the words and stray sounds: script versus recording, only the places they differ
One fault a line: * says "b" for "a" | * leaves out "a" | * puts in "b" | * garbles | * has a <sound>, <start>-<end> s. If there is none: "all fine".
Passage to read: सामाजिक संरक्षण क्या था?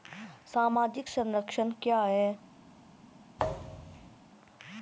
* says "है" for "था"
* has a thud, 3.4-4.2 s